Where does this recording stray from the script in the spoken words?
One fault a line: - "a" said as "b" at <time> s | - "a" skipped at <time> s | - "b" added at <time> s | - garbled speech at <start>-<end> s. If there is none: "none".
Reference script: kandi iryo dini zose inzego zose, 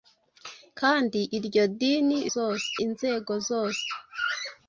none